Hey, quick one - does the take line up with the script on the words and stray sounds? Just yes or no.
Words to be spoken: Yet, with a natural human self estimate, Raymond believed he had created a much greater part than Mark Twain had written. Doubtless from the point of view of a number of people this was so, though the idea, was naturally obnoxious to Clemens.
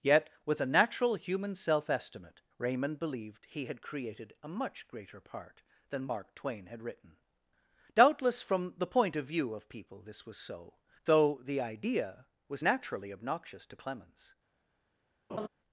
no